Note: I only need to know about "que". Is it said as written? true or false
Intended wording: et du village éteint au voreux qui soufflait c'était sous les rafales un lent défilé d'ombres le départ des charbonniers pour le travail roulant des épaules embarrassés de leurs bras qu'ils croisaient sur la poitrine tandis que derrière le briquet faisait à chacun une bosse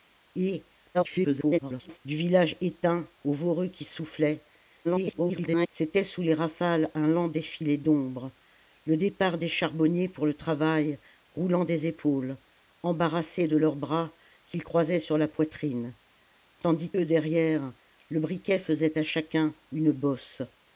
false